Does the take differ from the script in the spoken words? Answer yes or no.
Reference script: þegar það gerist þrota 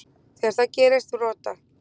no